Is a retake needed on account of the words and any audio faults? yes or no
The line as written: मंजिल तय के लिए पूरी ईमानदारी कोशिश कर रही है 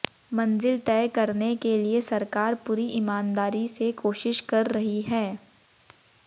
yes